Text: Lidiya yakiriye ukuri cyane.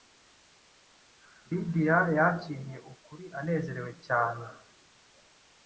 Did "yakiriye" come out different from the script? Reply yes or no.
no